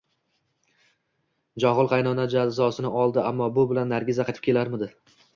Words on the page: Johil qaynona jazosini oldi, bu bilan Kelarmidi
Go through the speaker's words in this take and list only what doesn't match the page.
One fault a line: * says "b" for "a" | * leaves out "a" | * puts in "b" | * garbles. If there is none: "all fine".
* puts in "ammo"
* puts in "Nargiza qaytib"